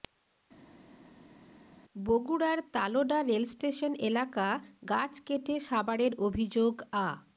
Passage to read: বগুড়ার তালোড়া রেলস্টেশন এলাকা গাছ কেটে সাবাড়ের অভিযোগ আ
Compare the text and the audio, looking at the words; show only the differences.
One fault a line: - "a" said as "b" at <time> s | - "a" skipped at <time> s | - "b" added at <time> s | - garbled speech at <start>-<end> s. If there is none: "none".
none